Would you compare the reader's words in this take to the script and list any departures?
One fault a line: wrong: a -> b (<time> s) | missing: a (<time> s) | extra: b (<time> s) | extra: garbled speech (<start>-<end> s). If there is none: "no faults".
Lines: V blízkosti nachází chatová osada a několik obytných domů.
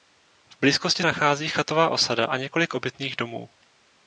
no faults